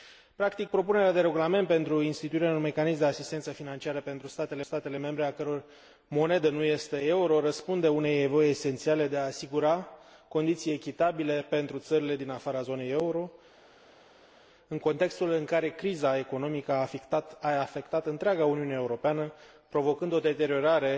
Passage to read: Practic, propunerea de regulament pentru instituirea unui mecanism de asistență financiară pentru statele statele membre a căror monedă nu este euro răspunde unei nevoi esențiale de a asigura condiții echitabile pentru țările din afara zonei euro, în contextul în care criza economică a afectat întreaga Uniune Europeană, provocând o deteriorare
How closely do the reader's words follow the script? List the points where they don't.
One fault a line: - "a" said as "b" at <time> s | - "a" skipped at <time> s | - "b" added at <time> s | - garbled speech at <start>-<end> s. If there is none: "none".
none